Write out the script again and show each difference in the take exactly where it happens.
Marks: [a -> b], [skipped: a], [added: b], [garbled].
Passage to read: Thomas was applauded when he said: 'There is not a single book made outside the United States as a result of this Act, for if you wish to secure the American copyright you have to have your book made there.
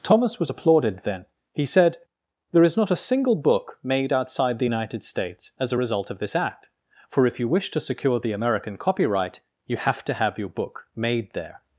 Thomas was applauded [when -> then] he said: 'There is not a single book made outside the United States as a result of this Act, for if you wish to secure the American copyright you have to have your book made there.